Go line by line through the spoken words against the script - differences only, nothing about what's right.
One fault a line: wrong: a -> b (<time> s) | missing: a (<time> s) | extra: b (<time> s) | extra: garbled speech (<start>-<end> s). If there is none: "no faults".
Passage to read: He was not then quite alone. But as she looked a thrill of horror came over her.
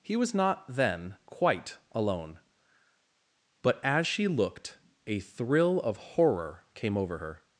no faults